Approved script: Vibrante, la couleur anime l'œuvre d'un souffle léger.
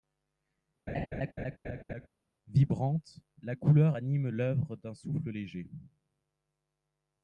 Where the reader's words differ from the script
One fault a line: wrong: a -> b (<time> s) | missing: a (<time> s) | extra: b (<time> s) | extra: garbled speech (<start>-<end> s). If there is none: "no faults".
no faults